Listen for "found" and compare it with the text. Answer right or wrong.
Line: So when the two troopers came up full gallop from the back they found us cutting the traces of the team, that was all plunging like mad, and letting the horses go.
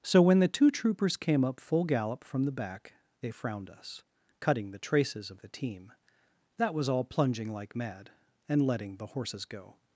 wrong